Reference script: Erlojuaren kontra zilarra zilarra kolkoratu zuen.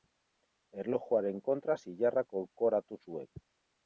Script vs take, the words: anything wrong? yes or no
yes